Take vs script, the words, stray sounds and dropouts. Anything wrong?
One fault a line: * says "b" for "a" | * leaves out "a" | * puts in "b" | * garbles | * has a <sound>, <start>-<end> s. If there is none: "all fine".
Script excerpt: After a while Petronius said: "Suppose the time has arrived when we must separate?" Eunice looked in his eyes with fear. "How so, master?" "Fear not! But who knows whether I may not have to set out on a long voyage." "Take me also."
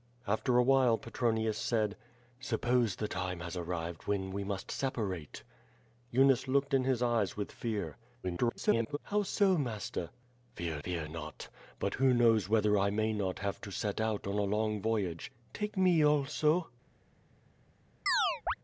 * garbles
* puts in "fear"
* has a chirp, 18.1-18.5 s